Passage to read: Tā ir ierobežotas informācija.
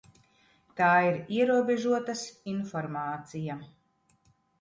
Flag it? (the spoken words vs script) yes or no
no